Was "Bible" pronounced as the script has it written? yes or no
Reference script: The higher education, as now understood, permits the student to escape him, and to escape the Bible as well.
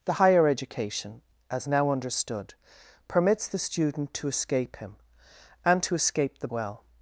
no